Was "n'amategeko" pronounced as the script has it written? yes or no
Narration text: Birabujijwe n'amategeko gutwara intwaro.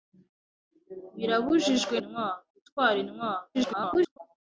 no